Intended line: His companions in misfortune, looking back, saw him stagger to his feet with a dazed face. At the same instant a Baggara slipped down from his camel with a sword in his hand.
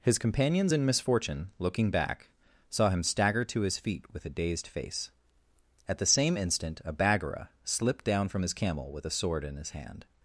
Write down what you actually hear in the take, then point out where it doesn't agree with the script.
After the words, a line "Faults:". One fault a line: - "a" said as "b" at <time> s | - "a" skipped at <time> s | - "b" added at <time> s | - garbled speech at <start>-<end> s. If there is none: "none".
His companions in misfortune, looking back, saw him stagger to his feet with a dazed face. At the same instant a Baggara slipped down from his camel with a sword in his hand.
Faults:
none